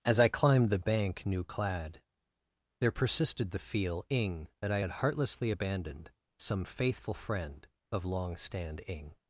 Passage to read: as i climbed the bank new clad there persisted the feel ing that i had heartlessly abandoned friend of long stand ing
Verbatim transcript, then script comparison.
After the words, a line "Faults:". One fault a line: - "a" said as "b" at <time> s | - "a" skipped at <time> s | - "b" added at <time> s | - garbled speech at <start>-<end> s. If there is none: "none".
as i climbed the bank new clad there persisted the feel ing that i had heartlessly abandoned some faithful friend of long stand ing
Faults:
- "some faithful" added at 6.4 s